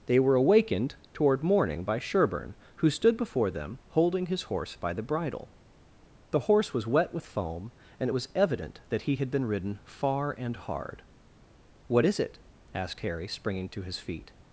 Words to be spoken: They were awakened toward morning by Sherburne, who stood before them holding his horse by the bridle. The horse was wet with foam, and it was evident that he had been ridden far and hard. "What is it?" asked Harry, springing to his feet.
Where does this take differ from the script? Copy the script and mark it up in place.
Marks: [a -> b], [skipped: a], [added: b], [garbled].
They were awakened toward morning by Sherburne, who stood before them holding his horse by the bridle. The horse was wet with foam, and it was evident that he had been ridden far and hard. "What is it?" asked Harry, springing to his feet.